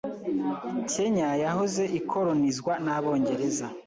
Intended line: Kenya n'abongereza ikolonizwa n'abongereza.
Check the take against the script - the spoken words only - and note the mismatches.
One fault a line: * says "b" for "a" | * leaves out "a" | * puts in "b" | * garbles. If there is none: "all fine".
* says "yahoze" for "n'abongereza"